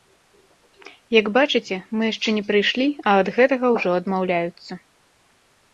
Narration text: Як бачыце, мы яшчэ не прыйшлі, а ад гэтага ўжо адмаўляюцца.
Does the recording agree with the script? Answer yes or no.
yes